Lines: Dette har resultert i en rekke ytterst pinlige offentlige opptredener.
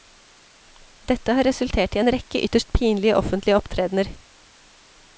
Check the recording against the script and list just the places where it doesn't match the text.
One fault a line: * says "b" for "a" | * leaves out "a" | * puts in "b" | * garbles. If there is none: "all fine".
all fine